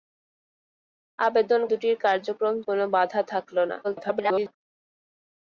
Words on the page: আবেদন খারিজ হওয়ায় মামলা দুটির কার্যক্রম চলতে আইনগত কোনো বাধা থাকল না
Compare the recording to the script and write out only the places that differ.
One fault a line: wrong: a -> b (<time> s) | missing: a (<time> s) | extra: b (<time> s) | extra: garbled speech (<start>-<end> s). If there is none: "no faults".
missing: খারিজ হওয়ায় মামলা (1.6 s)
missing: চলতে আইনগত (2.5 s)
extra: garbled speech (3.8-4.5 s)